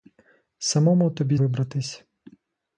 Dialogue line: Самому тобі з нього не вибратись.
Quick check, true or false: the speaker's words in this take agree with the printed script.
false